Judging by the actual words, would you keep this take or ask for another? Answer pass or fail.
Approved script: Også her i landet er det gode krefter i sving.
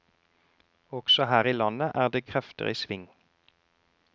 fail